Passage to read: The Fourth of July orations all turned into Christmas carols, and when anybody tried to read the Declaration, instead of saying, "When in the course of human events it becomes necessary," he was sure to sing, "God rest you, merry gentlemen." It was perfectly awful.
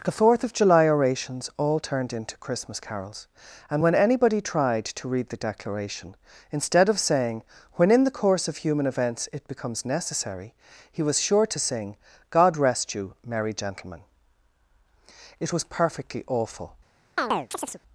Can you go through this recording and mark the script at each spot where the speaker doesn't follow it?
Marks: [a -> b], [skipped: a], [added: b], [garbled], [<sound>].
The Fourth of July orations all turned into Christmas carols, and when anybody tried to read the Declaration, instead of saying, "When in the course of human events it becomes necessary," he was sure to sing, "God rest you, merry gentlemen." It was perfectly awful. [chirp]